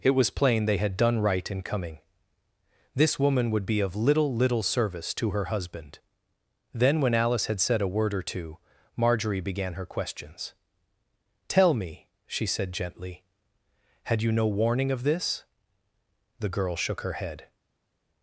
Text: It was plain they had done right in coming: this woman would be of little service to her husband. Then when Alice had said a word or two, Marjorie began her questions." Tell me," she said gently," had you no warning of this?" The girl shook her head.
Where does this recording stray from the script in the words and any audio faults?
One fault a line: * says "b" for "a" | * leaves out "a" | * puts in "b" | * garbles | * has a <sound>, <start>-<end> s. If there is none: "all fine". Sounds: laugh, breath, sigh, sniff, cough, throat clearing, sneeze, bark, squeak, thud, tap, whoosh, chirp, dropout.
* puts in "little"